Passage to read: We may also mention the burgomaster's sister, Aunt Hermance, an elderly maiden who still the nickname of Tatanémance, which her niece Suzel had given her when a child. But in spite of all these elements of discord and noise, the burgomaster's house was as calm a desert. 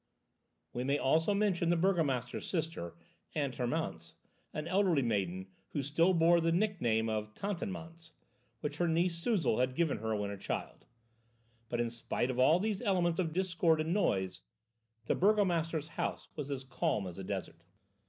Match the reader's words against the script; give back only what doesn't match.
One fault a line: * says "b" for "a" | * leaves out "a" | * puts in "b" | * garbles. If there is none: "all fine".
* puts in "bore"
* puts in "as"